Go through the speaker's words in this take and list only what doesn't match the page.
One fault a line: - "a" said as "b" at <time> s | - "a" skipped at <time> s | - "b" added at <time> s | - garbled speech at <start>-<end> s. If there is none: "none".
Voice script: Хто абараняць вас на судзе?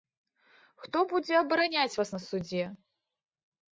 - "будзе" added at 1.1 s